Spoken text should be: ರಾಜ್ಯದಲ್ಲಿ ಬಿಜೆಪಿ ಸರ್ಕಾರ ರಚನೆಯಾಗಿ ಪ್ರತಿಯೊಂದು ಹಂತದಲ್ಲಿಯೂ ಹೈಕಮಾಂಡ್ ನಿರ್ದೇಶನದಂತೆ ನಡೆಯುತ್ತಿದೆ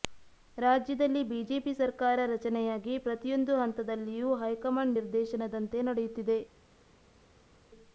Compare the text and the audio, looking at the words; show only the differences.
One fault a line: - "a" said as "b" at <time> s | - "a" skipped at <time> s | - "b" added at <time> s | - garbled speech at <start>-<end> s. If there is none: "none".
none